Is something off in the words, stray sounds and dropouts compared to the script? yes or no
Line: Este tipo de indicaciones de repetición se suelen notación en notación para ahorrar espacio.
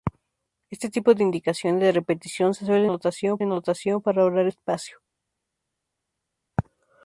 no